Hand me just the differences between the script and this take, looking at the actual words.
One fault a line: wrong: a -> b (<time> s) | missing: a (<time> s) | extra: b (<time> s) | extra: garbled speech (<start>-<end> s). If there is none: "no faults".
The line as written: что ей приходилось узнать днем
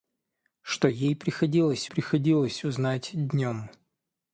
extra: приходилось (1.8 s)